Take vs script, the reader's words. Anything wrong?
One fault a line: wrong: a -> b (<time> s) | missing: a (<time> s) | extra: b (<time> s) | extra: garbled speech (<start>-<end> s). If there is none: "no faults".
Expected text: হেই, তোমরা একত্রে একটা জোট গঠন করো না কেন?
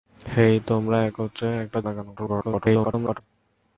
missing: জোট গঠন করো (1.8 s)
extra: garbled speech (2.2-3.2 s)